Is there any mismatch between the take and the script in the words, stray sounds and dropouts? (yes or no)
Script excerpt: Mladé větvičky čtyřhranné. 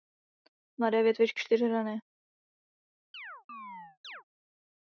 yes